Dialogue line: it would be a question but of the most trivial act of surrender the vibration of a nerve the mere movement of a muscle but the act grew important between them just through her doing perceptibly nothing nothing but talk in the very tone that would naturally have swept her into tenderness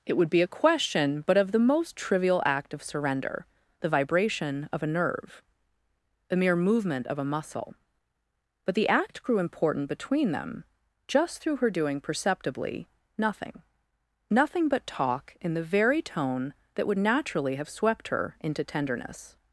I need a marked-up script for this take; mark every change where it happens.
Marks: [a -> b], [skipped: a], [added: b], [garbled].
it would be a question but of the most trivial act of surrender the vibration of a nerve the mere movement of a muscle but the act grew important between them just through her doing perceptibly nothing nothing but talk in the very tone that would naturally have swept her into tenderness